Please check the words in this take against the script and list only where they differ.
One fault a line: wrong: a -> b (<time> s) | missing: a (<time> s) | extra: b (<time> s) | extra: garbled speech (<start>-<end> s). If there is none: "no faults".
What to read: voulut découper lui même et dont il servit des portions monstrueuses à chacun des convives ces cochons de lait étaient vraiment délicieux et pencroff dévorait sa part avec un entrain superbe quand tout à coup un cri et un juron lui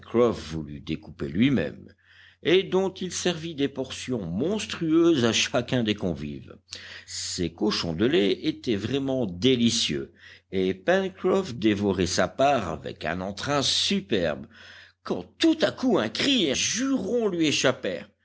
missing: un (16.5 s)